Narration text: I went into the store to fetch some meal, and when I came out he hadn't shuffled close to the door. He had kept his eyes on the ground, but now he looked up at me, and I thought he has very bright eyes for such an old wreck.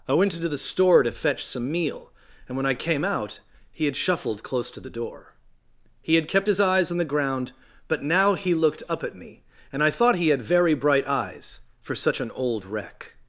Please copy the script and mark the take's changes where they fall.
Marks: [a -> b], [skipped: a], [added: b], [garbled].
I went into the store to fetch some meal, and when I came out he [hadn't -> had] shuffled close to the door. He had kept his eyes on the ground, but now he looked up at me, and I thought he [has -> had] very bright eyes for such an old wreck.